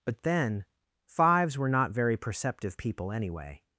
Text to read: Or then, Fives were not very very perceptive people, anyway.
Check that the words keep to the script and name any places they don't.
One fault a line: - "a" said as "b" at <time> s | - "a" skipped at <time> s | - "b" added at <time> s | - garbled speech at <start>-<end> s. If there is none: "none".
- "Or" said as "But" at 0.1 s
- "very" skipped at 2.1 s